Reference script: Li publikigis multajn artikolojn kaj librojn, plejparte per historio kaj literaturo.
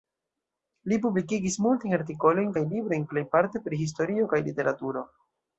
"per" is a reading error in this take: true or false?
true